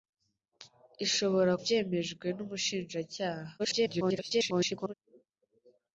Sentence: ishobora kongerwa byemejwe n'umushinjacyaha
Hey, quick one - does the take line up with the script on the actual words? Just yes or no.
no